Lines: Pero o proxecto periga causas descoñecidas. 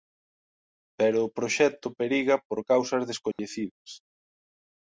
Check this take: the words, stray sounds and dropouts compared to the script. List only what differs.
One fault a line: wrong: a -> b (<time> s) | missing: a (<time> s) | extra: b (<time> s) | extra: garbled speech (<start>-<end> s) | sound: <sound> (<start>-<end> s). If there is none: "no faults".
extra: por (2.5 s)
sound: dropout (3.3-3.4 s)